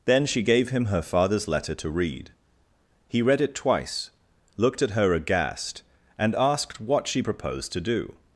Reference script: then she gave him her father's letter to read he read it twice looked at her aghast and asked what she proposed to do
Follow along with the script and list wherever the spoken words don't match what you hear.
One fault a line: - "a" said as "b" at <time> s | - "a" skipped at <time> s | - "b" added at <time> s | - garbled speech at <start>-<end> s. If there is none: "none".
none